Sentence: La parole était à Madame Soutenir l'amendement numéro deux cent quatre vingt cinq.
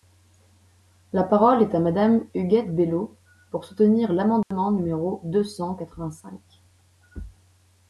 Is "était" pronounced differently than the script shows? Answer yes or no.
yes